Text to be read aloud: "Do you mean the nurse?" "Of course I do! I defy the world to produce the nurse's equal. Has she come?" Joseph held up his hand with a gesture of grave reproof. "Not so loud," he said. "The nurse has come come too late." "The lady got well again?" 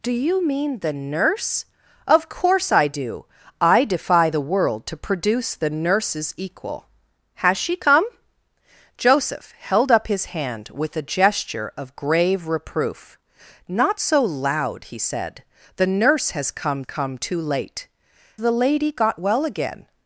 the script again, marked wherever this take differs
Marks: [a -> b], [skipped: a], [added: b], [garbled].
"Do you mean the nurse?" "Of course I do! I defy the world to produce the nurse's equal. Has she come?" Joseph held up his hand with a gesture of grave reproof. "Not so loud," he said. "The nurse has come come too late." "The lady got well again?"